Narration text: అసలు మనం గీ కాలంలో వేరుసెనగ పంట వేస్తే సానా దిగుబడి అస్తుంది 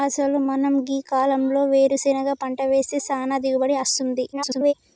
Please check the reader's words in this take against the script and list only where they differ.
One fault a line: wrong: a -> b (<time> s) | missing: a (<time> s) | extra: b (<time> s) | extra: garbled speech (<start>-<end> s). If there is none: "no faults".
extra: garbled speech (4.3-4.7 s)